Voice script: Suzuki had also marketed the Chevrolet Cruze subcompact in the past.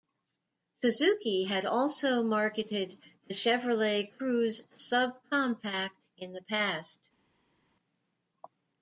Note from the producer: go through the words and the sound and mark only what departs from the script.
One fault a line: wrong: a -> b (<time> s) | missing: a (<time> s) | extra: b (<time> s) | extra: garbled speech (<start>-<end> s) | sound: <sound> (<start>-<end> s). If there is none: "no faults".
no faults